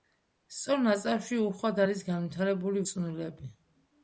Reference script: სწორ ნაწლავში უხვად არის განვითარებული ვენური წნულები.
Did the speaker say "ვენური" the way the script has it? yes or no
no